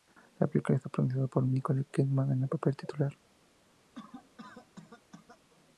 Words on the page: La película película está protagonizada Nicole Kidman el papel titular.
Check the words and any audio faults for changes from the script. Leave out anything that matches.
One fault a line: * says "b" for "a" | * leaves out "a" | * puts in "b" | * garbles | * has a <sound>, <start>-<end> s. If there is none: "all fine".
* leaves out "película"
* puts in "por"
* puts in "en"
* has a cough, 3.9-5.4 s